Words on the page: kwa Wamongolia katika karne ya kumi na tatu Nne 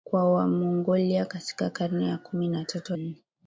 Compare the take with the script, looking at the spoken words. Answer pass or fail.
pass